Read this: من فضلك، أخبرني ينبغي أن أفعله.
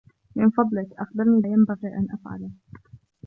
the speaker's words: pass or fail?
pass